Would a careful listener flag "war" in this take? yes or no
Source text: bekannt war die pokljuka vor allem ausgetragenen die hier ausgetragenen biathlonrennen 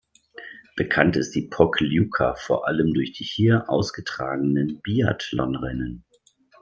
yes